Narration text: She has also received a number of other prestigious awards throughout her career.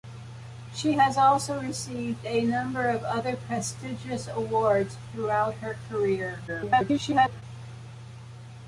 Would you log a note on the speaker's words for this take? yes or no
yes